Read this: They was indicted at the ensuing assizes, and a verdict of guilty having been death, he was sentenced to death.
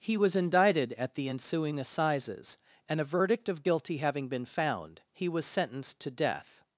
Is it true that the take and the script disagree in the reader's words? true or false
true